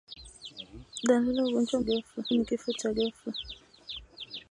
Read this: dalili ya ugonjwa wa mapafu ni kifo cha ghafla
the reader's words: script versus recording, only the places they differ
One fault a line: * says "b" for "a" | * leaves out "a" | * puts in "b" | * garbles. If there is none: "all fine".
* says "ghafla" for "mapafu"